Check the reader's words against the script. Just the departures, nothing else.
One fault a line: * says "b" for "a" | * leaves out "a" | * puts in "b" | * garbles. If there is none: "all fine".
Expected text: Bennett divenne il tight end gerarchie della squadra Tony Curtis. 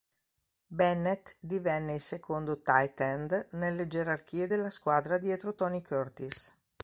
* puts in "secondo"
* puts in "nelle"
* puts in "dietro"